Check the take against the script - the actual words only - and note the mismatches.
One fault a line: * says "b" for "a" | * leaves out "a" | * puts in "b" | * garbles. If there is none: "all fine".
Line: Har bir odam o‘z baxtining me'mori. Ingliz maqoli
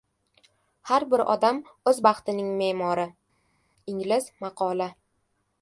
all fine